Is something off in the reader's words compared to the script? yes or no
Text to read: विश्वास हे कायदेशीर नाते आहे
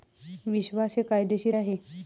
yes